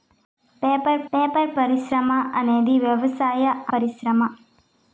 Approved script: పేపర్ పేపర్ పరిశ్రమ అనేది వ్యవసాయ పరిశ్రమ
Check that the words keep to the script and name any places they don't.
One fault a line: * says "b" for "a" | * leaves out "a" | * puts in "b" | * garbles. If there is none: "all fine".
all fine